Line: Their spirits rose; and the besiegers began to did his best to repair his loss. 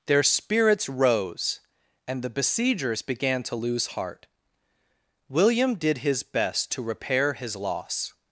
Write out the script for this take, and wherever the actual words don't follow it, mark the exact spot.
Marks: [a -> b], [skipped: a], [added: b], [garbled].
Their spirits rose; and the besiegers began to [added: lose heart William] did his best to repair his loss.